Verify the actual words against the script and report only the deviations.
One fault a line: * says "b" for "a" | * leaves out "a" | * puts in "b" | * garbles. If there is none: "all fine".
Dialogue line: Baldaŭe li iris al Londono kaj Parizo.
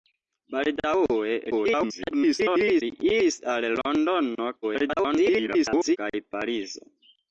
* garbles
* garbles